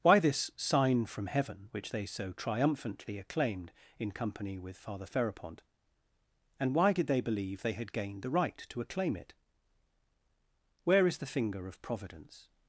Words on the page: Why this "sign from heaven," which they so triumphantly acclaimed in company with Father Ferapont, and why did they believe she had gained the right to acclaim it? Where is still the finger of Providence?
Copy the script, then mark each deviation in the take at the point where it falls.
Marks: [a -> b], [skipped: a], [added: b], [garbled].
Why this "sign from heaven," which they so triumphantly acclaimed in company with Father Ferapont, and why did they believe [she -> they] had gained the right to acclaim it? Where is [skipped: still] the finger of Providence?